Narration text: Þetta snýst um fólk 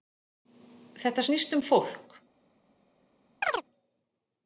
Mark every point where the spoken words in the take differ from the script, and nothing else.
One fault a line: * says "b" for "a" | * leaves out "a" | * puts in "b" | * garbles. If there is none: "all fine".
all fine